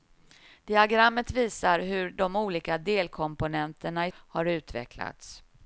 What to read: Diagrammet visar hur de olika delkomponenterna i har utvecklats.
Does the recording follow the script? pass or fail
pass